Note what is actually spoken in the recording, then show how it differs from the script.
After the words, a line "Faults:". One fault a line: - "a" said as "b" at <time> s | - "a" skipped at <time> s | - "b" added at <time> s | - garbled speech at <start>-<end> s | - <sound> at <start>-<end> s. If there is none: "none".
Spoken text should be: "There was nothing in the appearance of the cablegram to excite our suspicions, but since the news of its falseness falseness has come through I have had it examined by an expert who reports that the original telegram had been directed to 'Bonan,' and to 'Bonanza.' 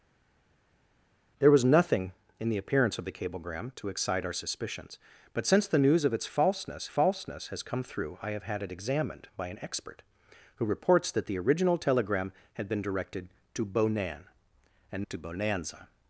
"There was nothing in the appearance of the cablegram to excite our suspicions, but since the news of its falseness falseness has come through I have had it examined by an expert who reports that the original telegram had been directed to 'Bonan,' and to 'Bonanza.'
Faults:
none